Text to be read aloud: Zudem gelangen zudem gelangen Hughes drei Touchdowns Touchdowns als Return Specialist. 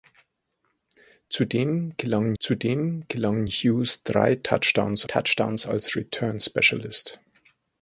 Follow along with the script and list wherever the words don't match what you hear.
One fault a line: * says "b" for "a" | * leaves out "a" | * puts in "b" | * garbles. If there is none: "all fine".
all fine